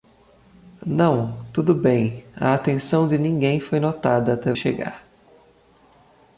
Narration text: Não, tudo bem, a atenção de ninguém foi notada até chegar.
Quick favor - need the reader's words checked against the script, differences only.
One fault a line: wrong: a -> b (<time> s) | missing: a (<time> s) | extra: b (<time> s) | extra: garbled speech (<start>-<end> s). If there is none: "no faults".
no faults